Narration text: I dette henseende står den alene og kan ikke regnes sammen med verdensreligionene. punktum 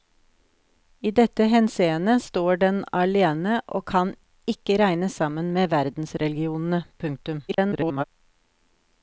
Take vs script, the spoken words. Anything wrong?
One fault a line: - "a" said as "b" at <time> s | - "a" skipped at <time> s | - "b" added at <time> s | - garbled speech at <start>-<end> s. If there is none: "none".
- garbled speech at 7.5-8.0 s